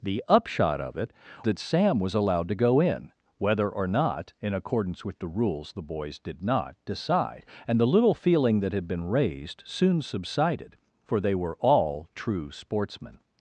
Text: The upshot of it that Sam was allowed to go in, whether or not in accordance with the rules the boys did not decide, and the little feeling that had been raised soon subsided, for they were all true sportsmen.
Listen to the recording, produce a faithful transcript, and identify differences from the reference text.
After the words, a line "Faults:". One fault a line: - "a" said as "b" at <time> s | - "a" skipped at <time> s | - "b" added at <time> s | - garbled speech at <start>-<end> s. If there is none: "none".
The upshot of it that Sam was allowed to go in, whether or not in accordance with the rules the boys did not decide, and the little feeling that had been raised soon subsided, for they were all true sportsmen.
Faults:
none